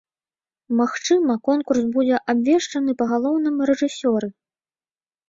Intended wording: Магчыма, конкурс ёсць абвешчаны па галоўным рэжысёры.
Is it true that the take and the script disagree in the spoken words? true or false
true